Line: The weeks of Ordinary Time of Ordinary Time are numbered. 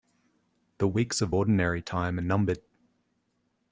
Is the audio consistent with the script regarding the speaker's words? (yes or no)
no